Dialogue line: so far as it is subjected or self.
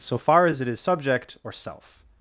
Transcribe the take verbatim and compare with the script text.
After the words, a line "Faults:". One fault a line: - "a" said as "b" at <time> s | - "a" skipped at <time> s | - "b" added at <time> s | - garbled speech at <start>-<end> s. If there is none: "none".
so far as it is subject or self.
Faults:
- "subjected" said as "subject" at 0.8 s